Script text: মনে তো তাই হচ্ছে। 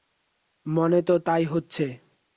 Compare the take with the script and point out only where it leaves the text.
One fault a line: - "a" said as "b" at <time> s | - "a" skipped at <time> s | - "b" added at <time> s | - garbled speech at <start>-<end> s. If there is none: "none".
none